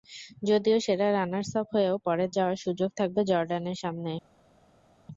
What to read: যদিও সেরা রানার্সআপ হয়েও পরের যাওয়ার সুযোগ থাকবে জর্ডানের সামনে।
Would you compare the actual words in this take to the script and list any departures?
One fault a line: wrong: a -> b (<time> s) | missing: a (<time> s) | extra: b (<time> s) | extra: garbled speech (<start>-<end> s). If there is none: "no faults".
no faults